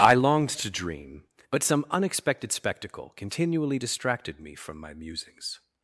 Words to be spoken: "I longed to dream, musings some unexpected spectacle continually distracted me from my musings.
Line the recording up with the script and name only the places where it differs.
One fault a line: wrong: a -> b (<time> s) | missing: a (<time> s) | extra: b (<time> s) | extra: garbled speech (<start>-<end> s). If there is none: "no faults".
wrong: musings -> but (1.5 s)